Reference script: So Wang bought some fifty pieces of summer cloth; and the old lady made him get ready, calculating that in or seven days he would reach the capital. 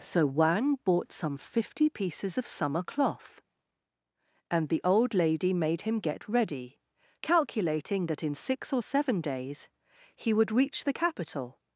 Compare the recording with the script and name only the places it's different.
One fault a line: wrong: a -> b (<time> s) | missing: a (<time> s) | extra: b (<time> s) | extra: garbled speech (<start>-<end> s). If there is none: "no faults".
extra: six (8.3 s)